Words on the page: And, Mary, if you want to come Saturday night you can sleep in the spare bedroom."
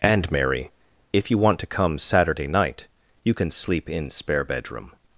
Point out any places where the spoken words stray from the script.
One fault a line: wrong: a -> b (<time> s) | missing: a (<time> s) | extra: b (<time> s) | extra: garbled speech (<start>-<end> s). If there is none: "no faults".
missing: the (4.1 s)